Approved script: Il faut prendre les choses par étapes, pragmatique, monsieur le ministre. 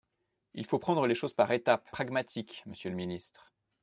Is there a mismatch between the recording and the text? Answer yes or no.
no